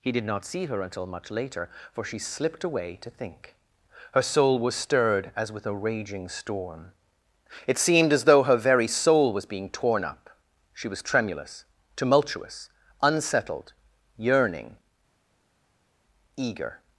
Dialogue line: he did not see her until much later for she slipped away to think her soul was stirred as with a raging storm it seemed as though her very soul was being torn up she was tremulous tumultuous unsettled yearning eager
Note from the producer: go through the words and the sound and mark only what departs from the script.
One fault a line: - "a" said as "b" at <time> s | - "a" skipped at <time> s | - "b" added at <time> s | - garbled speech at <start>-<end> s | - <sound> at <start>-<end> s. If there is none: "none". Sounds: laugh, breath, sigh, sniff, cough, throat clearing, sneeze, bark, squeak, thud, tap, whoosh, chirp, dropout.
none